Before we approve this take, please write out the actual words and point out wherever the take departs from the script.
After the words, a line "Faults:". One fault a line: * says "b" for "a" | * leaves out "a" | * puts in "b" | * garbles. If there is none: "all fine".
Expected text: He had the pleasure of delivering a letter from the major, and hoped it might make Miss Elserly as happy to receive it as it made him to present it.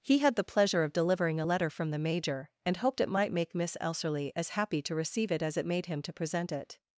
He had the pleasure of delivering a letter from the major, and hoped it might make Miss Elserly as happy to receive it as it made him to present it.
Faults:
all fine